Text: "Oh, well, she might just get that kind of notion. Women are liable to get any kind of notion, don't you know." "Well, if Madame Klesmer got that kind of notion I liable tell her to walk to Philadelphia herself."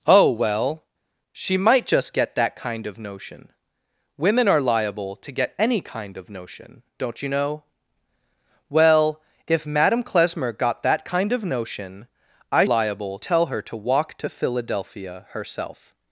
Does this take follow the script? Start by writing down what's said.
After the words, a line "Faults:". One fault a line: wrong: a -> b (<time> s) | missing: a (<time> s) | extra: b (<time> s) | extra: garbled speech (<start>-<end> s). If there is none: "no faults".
"Oh, well, she might just get that kind of notion. Women are liable to get any kind of notion, don't you know." "Well, if Madame Klesmer got that kind of notion I liable tell her to walk to Philadelphia herself."
Faults:
no faults